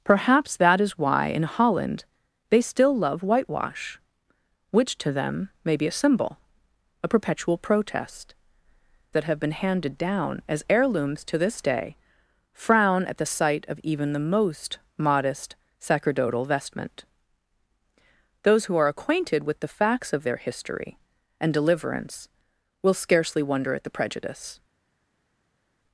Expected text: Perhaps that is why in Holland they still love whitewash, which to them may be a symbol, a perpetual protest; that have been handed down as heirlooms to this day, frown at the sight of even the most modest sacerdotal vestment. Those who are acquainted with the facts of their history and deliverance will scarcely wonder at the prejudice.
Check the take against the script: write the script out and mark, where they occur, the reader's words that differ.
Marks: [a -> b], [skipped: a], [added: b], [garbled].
Perhaps that is why in Holland they still love whitewash, which to them may be a symbol, a perpetual protest; that have been handed down as heirlooms to this day, frown at the sight of even the most modest sacerdotal vestment. Those who are acquainted with the facts of their history and deliverance will scarcely wonder at the prejudice.